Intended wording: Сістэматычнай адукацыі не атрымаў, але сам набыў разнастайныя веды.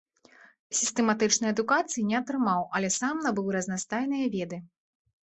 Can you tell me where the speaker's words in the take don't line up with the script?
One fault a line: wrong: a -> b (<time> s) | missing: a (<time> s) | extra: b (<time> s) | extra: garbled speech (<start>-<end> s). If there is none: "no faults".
no faults